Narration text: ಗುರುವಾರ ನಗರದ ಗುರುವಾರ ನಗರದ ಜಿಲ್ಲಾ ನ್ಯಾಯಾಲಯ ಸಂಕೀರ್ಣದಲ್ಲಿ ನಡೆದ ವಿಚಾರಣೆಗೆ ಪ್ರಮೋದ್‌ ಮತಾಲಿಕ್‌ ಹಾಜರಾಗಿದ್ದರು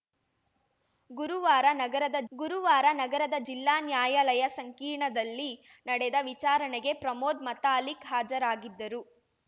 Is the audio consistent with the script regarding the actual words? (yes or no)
yes